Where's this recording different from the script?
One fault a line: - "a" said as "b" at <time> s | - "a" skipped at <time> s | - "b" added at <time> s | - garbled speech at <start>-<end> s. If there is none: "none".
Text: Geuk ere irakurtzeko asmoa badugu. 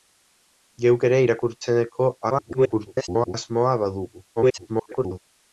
- garbled speech at 2.3-3.3 s
- garbled speech at 4.4-5.2 s